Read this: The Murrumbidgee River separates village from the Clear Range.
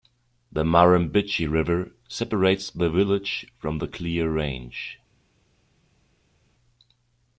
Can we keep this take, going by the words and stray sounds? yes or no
no